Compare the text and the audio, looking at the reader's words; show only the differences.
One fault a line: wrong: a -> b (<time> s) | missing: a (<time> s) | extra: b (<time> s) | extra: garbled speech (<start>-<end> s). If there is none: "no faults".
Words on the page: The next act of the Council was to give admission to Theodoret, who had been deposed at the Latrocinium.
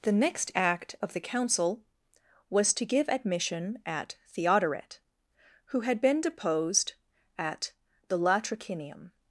wrong: to -> at (3.9 s)